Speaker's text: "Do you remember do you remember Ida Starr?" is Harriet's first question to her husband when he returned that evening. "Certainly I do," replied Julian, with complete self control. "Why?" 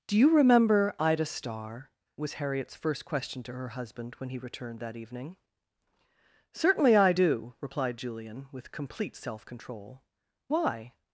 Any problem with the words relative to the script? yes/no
yes